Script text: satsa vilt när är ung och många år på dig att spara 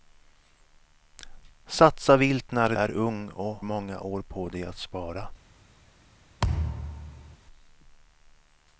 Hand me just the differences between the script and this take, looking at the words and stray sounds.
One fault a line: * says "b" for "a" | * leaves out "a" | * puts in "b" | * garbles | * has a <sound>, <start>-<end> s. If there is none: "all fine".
* has a thud, 6.4-7.4 s